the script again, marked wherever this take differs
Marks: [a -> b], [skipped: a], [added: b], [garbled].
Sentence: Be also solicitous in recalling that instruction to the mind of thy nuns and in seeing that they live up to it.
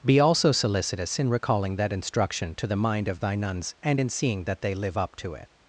Be also solicitous in recalling that instruction to the mind of thy nuns and in seeing that they live up to it.